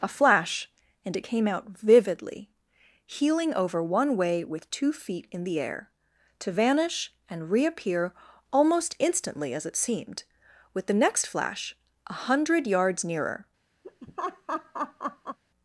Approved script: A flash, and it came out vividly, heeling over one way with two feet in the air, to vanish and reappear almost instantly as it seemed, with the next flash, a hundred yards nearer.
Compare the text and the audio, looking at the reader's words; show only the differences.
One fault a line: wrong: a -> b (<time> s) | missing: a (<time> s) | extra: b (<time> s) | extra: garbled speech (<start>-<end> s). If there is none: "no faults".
no faults